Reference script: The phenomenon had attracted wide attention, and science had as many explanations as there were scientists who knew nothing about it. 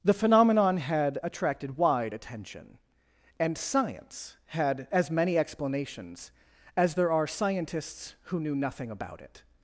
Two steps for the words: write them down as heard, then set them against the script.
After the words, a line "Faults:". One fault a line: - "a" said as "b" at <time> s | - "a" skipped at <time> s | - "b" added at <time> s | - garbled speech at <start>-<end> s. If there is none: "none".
The phenomenon had attracted wide attention, and science had as many explanations as there are scientists who knew nothing about it.
Faults:
- "were" said as "are" at 7.1 s